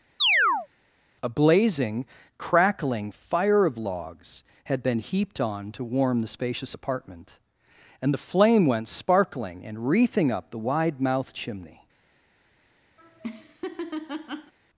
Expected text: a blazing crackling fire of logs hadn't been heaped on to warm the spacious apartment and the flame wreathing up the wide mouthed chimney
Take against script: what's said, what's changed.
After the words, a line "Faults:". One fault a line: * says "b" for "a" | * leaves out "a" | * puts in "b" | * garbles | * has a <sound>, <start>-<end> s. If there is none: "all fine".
a blazing crackling fire of logs had been heaped on to warm the spacious apartment and the flame went sparkling and wreathing up the wide mouthed chimney
Faults:
* has a chirp, 0.2-0.7 s
* says "had" for "hadn't"
* puts in "went sparkling and"
* has a laugh, 13.0-14.5 s